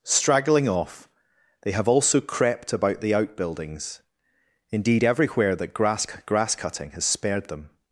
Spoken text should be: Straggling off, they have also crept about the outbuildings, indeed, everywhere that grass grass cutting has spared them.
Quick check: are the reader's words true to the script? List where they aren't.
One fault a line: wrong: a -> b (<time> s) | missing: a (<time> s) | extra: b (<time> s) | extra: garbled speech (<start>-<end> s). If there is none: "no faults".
no faults